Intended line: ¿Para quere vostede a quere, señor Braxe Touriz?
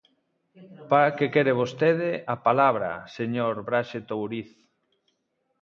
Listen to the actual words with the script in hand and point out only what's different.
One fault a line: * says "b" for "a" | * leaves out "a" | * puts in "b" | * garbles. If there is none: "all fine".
* puts in "que"
* says "palabra" for "quere"